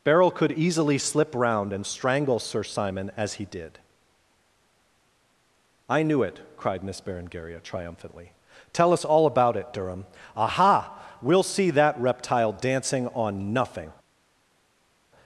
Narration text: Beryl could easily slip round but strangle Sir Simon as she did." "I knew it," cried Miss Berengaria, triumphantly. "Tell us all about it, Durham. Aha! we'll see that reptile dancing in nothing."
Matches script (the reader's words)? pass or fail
fail